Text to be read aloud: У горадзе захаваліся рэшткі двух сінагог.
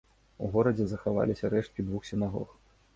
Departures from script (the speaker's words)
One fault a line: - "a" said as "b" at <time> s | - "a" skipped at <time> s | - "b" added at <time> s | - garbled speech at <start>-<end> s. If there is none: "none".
none